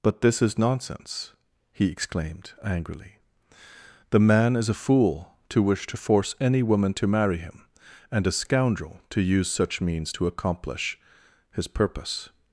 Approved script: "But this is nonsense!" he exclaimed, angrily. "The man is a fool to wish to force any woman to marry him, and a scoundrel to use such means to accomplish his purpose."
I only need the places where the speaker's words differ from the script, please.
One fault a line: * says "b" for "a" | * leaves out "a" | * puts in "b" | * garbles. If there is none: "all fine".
all fine